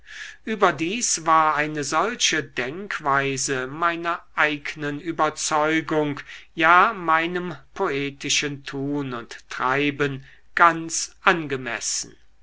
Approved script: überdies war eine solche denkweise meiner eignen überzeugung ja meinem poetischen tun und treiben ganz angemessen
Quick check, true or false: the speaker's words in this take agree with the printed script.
true